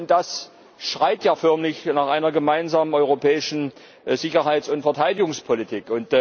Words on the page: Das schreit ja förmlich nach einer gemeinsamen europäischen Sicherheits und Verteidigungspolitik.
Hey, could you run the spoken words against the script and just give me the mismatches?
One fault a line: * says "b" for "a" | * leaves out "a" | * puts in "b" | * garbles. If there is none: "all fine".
all fine